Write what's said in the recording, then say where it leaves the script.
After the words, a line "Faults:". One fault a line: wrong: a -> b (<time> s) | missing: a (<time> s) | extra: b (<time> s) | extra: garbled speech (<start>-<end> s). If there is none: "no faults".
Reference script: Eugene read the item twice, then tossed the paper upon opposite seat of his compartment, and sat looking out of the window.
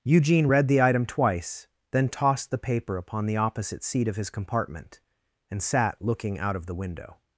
Eugene read the item twice, then tossed the paper upon the opposite seat of his compartment, and sat looking out of the window.
Faults:
extra: the (3.3 s)